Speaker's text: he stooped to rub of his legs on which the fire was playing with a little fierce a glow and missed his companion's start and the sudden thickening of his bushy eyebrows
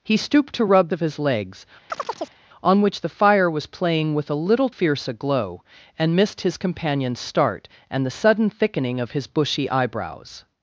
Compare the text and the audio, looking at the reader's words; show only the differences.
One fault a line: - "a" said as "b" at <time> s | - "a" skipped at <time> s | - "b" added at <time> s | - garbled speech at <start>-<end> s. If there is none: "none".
none